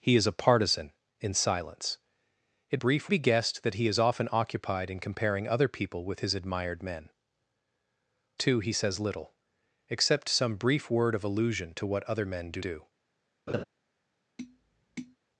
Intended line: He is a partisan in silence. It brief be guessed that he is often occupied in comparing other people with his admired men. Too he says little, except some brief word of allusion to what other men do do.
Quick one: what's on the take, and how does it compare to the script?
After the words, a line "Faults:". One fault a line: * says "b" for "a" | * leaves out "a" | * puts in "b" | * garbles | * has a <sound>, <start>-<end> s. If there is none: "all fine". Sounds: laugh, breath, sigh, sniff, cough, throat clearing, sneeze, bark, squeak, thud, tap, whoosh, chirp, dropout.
He is a partisan in silence. It brief be guessed that he is often occupied in comparing other people with his admired men. Too he says little, except some brief word of allusion to what other men do do.
Faults:
* has a laugh, 13.5-13.6 s
* has a tap, 14.4-15.2 s